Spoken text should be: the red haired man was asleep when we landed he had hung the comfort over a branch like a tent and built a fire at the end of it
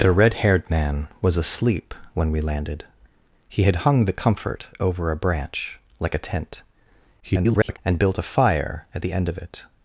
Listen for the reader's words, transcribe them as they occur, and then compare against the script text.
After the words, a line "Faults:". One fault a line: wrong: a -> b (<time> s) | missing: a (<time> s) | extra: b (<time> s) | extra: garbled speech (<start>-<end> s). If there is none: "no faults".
the red haired man was asleep when we landed he had hung the comfort over a branch like a tent [garbled] and built a fire at the end of it
Faults:
extra: garbled speech (7.2-7.8 s)